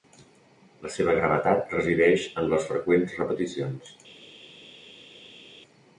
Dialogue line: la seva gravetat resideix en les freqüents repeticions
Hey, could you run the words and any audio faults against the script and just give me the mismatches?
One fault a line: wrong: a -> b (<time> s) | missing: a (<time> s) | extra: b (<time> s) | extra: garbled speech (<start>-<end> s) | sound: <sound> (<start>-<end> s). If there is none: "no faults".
no faults